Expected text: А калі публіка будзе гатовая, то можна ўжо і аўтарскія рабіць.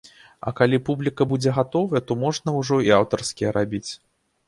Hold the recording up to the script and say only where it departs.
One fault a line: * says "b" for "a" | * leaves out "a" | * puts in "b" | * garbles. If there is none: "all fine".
all fine